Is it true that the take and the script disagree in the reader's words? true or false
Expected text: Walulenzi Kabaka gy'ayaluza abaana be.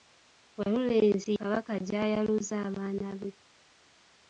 false